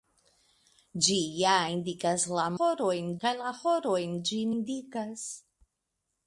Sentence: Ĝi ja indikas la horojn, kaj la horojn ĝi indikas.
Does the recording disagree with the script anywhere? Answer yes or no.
no